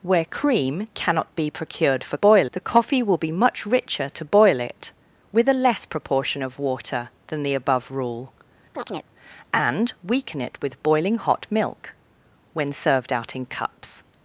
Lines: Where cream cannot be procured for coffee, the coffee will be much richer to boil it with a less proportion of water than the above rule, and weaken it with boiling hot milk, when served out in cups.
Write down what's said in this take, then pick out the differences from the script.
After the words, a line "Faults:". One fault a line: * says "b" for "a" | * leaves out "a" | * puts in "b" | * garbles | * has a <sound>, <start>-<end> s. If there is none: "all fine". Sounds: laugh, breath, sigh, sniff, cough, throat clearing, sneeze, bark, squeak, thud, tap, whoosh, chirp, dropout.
Where cream cannot be procured for boil, the coffee will be much richer to boil it with a less proportion of water than the above rule, and weaken it with boiling hot milk, when served out in cups.
Faults:
* says "boil" for "coffee"
* has a chirp, 8.7-9.1 s